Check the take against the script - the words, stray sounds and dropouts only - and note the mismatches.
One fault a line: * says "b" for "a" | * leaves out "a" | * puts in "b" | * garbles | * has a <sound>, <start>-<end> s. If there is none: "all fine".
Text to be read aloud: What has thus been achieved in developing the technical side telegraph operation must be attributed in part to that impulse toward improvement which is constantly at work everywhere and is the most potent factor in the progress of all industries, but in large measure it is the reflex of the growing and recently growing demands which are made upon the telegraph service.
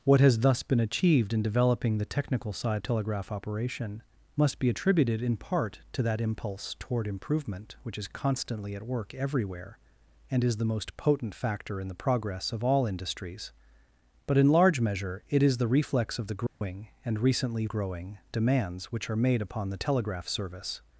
* has a dropout, 16.5-16.6 s